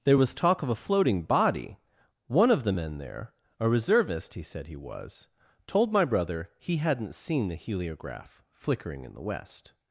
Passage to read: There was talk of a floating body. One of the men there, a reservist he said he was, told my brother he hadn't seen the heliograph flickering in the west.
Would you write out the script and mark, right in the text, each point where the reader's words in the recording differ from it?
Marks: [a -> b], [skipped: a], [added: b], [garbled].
There was talk of a floating body. One of the men there, a reservist he said he was, told my brother he hadn't seen the heliograph flickering in the west.